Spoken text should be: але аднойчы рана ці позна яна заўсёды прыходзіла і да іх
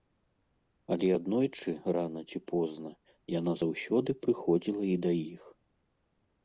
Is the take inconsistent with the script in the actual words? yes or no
no